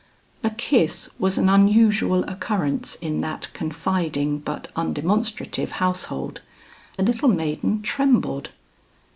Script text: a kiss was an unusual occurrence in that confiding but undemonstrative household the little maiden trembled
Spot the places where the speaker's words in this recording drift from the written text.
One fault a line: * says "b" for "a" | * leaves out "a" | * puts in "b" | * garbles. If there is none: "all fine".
all fine